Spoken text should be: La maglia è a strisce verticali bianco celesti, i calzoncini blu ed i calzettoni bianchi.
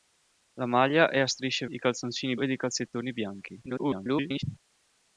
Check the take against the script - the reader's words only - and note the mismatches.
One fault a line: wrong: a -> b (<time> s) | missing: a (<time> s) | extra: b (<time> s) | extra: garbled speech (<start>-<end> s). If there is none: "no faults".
missing: verticali bianco celesti (1.7 s)
missing: blu (2.4 s)
extra: garbled speech (3.7-4.4 s)